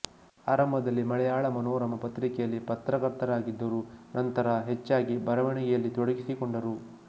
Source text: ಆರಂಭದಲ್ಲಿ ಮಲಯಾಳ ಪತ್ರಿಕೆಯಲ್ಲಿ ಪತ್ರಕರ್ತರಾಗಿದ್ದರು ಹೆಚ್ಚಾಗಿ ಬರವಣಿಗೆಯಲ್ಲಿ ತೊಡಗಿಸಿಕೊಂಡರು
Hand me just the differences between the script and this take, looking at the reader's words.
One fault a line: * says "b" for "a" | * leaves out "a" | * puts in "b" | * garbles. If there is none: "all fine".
* puts in "ಮನೋರಮ"
* puts in "ನಂತರ"